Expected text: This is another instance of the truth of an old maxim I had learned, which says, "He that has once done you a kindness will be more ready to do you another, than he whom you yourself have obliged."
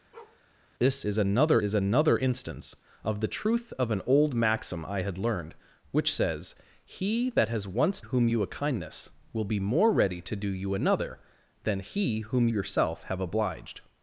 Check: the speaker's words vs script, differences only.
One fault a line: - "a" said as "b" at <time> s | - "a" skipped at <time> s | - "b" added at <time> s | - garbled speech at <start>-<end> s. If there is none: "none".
- "is another" added at 1.6 s
- "done" said as "whom" at 8.0 s
- "you" skipped at 12.5 s